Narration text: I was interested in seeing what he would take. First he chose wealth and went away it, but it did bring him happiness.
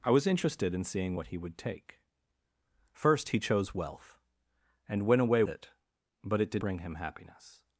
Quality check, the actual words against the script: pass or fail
pass